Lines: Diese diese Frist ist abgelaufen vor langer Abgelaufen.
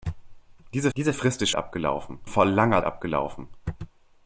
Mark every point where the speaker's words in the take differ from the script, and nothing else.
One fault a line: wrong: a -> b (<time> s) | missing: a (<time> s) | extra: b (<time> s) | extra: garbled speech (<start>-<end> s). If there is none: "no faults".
no faults